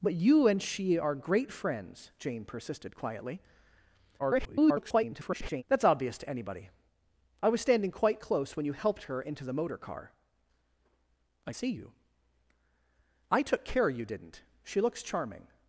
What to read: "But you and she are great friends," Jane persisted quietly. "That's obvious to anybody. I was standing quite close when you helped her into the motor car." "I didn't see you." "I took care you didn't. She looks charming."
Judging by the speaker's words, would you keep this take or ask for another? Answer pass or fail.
fail